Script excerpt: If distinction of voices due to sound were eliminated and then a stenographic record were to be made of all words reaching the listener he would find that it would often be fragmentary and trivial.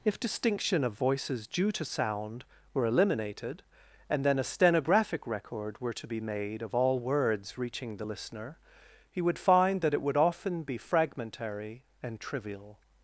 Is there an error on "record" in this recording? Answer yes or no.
no